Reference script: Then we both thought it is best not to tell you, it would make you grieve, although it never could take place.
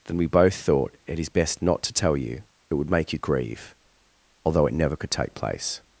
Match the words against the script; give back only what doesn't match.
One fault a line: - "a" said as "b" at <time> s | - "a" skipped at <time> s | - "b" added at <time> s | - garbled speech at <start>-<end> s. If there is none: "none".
none